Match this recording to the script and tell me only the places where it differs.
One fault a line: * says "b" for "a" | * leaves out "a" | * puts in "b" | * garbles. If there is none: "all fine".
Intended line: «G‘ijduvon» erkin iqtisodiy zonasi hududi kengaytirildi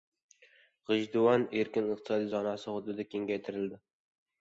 all fine